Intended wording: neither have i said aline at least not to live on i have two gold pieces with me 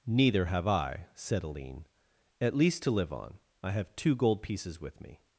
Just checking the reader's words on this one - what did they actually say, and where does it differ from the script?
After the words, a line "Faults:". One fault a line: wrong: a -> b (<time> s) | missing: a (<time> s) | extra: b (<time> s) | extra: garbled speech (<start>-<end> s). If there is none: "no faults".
neither have i said aline at least to live on i have two gold pieces with me
Faults:
missing: not (2.8 s)